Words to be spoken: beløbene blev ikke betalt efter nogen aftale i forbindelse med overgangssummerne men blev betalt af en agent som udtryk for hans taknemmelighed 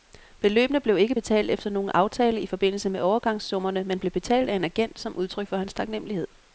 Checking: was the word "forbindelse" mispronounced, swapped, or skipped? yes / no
no